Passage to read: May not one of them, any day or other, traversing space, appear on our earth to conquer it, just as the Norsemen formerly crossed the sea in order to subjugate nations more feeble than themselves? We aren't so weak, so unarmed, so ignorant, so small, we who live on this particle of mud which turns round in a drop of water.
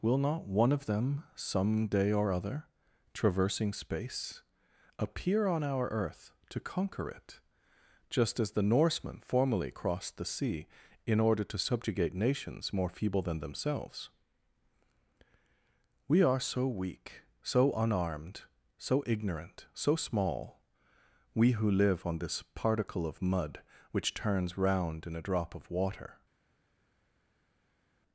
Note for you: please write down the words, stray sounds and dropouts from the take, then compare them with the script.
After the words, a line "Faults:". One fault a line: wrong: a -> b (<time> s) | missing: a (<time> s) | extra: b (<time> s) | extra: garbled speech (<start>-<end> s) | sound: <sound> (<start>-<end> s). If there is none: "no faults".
Will not one of them, some day or other, traversing space, appear on our earth to conquer it, just as the Norsemen formerly crossed the sea in order to subjugate nations more feeble than themselves? We are so weak, so unarmed, so ignorant, so small, we who live on this particle of mud which turns round in a drop of water.
Faults:
wrong: May -> Will (0.0 s)
wrong: any -> some (1.4 s)
wrong: aren't -> are (16.2 s)